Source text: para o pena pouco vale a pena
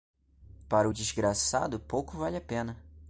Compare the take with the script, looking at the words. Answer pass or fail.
fail